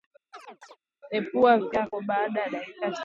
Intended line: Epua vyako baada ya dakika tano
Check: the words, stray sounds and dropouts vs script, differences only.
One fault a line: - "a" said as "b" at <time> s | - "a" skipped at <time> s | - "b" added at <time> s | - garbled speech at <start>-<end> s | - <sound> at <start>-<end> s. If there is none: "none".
- chirp at 0.3-0.8 s